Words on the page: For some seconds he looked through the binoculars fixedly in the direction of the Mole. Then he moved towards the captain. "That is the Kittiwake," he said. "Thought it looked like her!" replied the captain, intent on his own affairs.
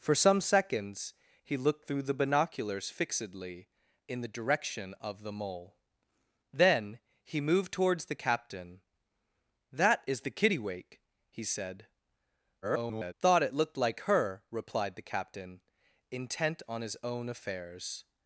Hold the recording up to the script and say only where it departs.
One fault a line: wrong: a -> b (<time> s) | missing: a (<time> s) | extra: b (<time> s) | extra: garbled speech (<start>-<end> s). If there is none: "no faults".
extra: garbled speech (12.6-13.1 s)